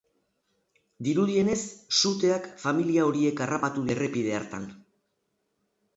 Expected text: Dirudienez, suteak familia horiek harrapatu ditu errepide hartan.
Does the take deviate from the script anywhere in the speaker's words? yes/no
yes